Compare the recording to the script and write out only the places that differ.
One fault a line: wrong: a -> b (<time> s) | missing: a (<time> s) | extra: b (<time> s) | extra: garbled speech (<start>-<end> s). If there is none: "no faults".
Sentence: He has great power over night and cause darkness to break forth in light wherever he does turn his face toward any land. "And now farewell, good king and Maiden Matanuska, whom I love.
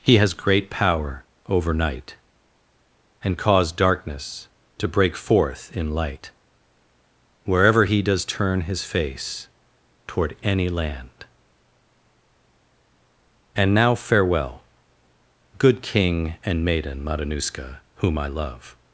no faults